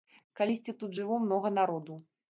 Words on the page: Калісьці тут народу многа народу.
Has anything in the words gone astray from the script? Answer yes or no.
yes